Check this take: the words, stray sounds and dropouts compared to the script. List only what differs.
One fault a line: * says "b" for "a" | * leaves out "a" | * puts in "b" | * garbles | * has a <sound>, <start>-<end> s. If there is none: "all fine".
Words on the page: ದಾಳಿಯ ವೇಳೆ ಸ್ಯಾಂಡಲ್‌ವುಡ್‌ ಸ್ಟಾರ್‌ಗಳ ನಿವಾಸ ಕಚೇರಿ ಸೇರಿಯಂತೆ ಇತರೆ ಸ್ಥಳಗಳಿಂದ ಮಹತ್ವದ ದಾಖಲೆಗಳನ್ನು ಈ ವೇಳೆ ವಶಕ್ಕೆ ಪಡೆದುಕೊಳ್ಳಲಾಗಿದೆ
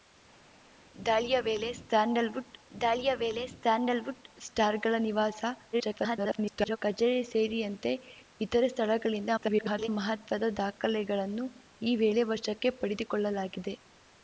* puts in "ದಾಳಿಯ ವೇಳೆ ಸ್ಯಾಂಡಲ್‌ವುಡ್"
* garbles
* garbles